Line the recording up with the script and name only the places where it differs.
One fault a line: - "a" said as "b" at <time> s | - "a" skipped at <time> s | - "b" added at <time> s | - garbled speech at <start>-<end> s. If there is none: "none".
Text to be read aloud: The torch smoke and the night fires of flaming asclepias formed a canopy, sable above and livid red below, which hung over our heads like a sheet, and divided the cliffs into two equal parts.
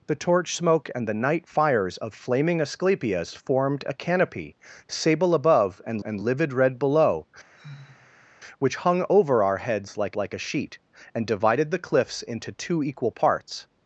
- "and" added at 6.0 s
- "like" added at 10.2 s